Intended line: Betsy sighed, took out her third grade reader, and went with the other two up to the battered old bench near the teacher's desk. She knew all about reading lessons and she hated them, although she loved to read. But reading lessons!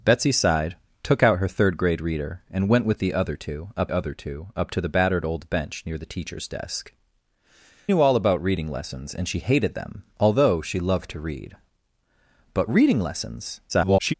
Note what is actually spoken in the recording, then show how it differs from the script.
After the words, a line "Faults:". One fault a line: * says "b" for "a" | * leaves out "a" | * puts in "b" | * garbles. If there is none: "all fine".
Betsy sighed, took out her third grade reader, and went with the other two up other two up to the battered old bench near the teacher's desk. Knew all about reading lessons and she hated them, although she loved to read. But reading lessons! [garbled]
Faults:
* puts in "other two up"
* leaves out "She"
* garbles